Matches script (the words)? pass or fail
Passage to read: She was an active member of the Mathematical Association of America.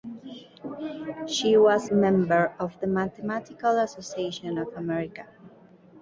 fail